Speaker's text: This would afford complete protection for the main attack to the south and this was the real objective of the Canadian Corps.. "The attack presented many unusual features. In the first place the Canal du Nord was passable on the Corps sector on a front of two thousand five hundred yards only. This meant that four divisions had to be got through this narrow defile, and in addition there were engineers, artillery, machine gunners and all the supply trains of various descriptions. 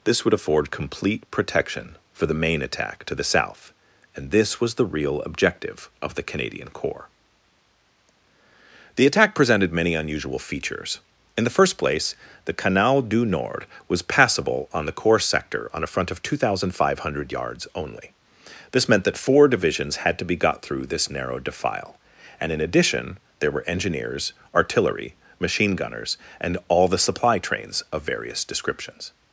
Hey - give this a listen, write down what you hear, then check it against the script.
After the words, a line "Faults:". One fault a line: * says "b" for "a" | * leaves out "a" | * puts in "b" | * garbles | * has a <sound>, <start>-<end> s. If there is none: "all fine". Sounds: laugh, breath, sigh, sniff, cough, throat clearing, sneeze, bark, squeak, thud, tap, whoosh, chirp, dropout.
This would afford complete protection for the main attack to the south and this was the real objective of the Canadian Corps.. "The attack presented many unusual features. In the first place the Canal du Nord was passable on the Corps sector on a front of two thousand five hundred yards only. This meant that four divisions had to be got through this narrow defile, and in addition there were engineers, artillery, machine gunners and all the supply trains of various descriptions.
Faults:
all fine